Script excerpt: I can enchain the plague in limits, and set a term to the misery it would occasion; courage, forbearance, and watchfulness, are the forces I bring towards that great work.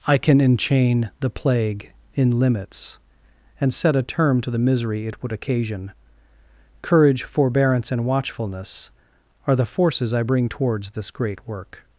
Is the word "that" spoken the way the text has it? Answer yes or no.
no